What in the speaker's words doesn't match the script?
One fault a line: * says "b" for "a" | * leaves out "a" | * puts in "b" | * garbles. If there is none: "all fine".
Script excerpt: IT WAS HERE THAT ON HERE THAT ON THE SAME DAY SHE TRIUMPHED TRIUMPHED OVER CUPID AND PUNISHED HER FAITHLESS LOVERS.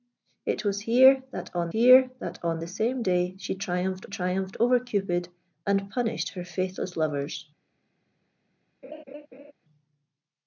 all fine